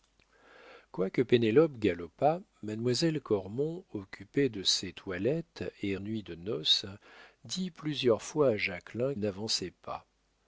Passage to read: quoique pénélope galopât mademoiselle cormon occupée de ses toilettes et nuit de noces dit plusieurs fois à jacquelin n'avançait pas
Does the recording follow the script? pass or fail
pass